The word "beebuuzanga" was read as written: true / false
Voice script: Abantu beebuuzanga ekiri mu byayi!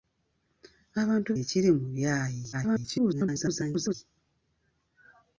false